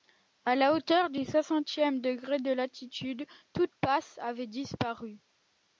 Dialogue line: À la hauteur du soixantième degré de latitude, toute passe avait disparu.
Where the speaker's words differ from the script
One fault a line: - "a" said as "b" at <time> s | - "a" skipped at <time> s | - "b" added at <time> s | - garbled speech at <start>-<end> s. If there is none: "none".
none